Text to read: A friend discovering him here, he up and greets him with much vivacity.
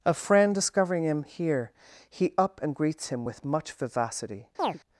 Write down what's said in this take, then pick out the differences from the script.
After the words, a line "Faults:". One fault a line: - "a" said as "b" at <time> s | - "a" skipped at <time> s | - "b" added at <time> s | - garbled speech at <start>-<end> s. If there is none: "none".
A friend discovering him here, he up and greets him with much vivacity.
Faults:
none